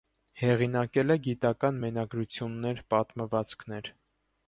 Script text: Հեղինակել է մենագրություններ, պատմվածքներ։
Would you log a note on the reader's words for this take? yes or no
yes